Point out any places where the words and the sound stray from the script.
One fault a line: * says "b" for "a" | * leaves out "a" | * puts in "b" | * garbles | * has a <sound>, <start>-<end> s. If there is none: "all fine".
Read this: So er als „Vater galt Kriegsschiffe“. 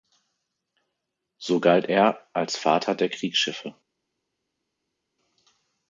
* puts in "galt"
* says "der" for "galt"